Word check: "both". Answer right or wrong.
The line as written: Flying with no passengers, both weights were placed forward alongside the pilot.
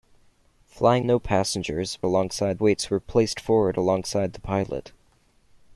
wrong